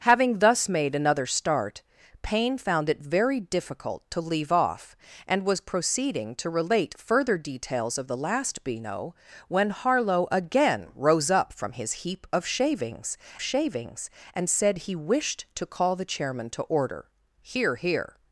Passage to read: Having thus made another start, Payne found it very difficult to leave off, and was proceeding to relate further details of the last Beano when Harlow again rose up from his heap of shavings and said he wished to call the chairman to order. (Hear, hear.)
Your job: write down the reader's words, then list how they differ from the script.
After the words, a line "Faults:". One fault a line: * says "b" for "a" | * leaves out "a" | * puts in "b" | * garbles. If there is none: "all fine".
Having thus made another start, Payne found it very difficult to leave off, and was proceeding to relate further details of the last Beano when Harlow again rose up from his heap of shavings shavings and said he wished to call the chairman to order. (Hear, hear.)
Faults:
* puts in "shavings"